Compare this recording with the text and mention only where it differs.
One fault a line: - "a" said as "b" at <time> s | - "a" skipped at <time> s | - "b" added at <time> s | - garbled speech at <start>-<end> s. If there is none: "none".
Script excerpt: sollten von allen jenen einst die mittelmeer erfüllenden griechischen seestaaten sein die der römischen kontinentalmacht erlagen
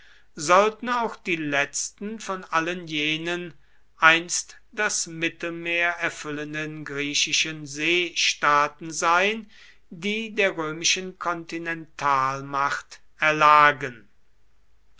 - "auch die letzten" added at 0.9 s
- "die" said as "das" at 4.7 s